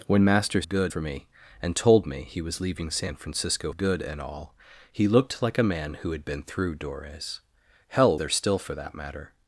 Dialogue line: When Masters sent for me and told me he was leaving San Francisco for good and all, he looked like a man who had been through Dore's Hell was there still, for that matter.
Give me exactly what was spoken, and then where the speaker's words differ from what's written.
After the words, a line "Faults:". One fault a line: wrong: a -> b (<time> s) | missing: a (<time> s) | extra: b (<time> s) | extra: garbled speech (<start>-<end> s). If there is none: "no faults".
When Masters good for me and told me he was leaving San Francisco good and all, he looked like a man who had been through Dore's Hell there still, for that matter.
Faults:
wrong: sent -> good (0.6 s)
missing: for (3.7 s)
missing: was (8.2 s)